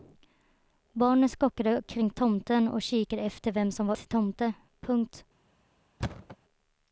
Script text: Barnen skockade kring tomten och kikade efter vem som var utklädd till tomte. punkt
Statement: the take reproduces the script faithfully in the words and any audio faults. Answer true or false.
false